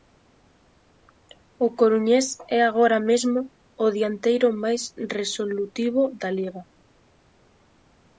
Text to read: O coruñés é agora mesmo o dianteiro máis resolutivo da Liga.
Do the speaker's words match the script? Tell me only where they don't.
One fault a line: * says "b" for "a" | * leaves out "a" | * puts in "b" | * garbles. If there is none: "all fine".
all fine